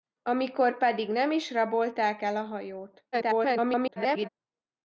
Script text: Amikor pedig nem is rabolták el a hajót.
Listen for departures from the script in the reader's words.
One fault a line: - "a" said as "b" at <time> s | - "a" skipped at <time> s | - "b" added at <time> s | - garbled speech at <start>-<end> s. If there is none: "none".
- garbled speech at 3.1-4.3 s